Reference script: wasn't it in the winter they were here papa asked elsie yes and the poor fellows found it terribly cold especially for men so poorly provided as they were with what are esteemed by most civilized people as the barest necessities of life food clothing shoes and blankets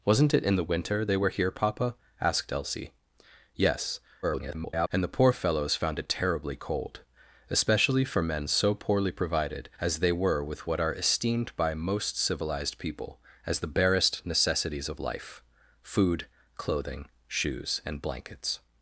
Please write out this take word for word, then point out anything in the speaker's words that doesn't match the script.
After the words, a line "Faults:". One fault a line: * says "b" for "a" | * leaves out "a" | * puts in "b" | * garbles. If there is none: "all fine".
wasn't it in the winter they were here papa asked elsie yes [garbled] and the poor fellows found it terribly cold especially for men so poorly provided as they were with what are esteemed by most civilized people as the barest necessities of life food clothing shoes and blankets
Faults:
* garbles